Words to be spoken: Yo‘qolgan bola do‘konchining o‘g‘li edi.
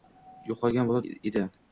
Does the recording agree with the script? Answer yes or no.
no